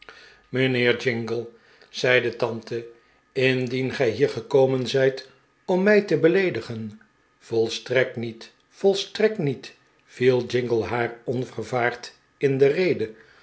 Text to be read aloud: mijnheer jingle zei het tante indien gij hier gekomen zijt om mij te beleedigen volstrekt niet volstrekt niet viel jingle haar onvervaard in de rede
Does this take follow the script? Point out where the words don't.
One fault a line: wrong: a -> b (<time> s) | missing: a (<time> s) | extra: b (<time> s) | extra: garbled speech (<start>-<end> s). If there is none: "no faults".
wrong: het -> de (2.2 s)